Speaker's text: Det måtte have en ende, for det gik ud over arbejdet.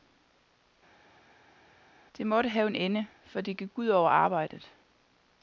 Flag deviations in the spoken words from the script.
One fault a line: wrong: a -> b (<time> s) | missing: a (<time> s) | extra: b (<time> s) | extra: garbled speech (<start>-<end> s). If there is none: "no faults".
no faults